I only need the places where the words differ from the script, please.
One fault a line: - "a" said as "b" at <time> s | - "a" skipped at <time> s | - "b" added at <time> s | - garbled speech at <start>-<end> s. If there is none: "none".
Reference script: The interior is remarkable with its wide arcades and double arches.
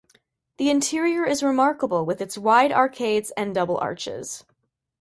none